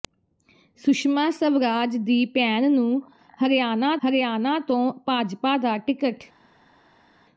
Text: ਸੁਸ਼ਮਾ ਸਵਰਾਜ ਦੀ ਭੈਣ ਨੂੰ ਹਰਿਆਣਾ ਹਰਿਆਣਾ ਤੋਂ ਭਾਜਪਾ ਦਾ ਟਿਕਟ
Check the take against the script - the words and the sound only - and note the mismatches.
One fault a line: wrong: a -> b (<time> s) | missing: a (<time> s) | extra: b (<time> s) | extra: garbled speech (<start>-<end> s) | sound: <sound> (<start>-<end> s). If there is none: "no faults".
no faults